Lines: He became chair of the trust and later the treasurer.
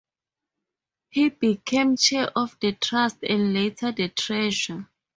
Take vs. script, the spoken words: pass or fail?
pass